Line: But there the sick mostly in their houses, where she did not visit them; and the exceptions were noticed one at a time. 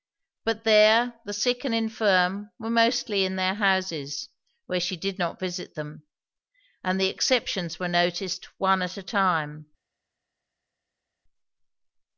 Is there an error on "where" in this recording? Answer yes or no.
no